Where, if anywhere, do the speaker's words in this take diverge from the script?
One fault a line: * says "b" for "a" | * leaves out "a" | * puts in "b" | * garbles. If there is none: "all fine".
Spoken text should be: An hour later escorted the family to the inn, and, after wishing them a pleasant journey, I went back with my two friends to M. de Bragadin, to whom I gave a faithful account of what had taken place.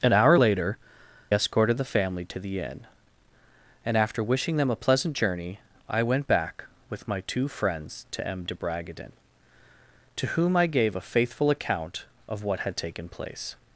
all fine